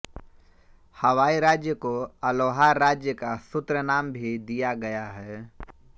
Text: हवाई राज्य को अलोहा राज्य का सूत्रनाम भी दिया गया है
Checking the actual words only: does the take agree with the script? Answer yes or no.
yes